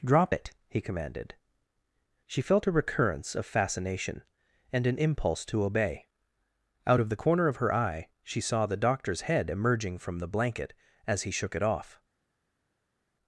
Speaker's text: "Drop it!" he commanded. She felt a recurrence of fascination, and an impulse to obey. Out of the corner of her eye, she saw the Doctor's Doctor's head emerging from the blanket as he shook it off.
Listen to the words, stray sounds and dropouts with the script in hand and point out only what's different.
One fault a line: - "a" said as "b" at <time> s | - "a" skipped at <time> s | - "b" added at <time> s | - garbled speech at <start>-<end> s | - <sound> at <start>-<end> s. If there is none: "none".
- "Doctor's" skipped at 9.2 s